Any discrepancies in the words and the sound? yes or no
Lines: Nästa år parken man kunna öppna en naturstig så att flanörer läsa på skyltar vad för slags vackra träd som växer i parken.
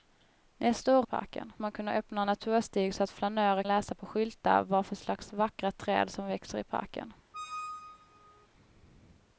yes